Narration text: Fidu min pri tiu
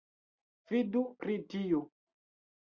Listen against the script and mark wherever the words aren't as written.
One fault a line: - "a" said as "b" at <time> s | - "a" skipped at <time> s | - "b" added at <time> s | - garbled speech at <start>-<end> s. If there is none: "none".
- "min" skipped at 1.0 s